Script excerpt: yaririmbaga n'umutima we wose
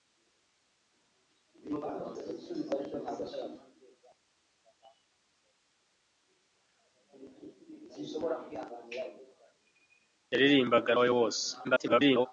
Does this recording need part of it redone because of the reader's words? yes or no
yes